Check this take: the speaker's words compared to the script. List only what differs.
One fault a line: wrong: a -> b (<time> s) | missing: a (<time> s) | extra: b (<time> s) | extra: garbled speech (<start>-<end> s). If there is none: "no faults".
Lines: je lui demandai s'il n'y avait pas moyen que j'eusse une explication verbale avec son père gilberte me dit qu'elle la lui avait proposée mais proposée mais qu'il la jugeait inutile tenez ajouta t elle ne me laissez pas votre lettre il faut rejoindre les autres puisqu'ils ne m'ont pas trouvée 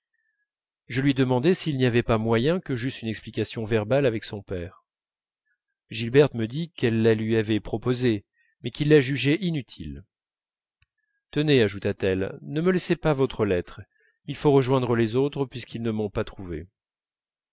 missing: proposée mais (8.7 s)